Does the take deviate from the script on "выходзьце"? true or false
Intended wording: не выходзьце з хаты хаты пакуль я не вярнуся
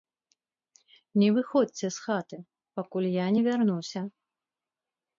false